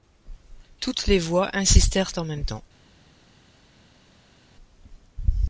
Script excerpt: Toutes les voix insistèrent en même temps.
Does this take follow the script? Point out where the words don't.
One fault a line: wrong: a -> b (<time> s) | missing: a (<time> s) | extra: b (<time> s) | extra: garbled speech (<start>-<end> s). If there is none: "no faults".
no faults